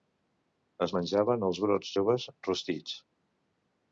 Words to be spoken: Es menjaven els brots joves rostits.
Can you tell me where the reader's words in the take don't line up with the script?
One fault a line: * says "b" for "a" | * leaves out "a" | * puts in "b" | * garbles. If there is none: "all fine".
all fine